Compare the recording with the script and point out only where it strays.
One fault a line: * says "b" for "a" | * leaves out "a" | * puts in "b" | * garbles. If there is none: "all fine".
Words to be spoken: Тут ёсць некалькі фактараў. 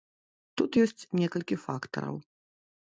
all fine